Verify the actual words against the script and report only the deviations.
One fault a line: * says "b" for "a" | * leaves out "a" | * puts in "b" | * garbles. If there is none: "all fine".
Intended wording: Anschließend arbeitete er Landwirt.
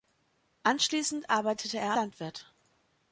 all fine